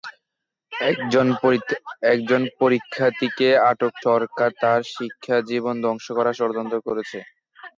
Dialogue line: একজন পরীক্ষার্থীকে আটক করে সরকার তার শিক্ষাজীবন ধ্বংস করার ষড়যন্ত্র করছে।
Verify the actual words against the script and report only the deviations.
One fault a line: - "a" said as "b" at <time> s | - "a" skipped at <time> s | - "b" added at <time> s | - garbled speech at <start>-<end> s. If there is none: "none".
- "করে" skipped at 3.9 s